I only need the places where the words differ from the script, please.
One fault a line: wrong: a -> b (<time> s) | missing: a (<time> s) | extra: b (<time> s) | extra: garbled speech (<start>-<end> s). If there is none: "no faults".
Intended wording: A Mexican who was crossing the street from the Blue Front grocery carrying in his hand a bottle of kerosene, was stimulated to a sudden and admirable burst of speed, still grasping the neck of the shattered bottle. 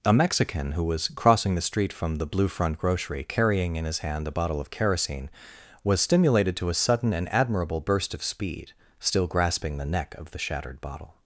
no faults